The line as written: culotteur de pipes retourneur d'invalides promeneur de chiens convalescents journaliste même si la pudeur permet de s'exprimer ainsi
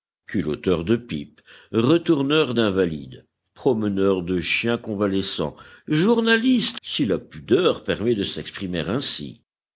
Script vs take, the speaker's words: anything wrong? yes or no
yes